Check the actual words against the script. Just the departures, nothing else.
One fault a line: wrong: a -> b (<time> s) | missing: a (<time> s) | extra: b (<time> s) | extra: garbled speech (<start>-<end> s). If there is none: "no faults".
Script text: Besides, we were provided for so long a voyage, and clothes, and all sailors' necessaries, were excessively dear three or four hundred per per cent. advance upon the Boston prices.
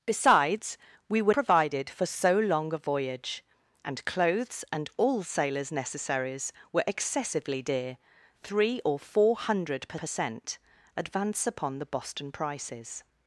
no faults